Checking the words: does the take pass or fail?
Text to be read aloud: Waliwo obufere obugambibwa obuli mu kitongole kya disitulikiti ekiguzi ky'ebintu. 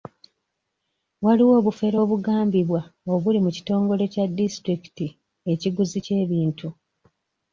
pass